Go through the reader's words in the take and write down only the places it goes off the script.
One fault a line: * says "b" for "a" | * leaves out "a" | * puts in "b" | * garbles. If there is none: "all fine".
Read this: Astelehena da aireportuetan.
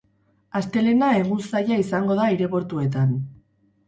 * puts in "egun zaila izango"